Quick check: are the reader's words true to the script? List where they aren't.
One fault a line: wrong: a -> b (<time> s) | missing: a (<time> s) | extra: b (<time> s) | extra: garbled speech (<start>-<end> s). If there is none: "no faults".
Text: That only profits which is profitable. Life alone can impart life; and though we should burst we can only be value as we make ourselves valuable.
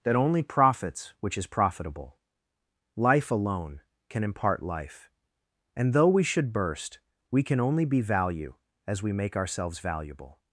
no faults